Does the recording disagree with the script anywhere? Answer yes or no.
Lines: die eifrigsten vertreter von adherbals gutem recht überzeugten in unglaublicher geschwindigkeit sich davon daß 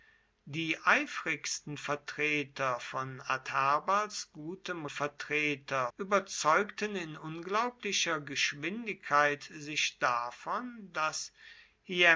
yes